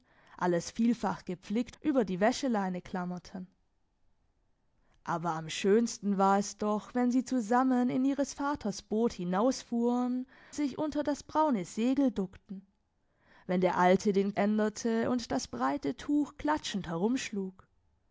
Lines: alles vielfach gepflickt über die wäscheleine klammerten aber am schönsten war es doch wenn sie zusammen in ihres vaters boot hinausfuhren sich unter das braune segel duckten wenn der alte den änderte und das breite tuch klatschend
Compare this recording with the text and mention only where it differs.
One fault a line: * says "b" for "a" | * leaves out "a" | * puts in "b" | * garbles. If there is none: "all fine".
all fine